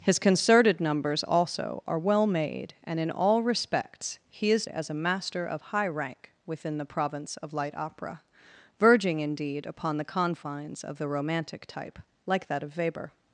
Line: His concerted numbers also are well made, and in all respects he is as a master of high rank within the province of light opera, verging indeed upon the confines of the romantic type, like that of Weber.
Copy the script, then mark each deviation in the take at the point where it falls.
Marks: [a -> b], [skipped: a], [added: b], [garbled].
His concerted numbers also are well made, and in all respects he is as a master of high rank within the province of light opera, verging indeed upon the confines of the romantic type, like that of Weber.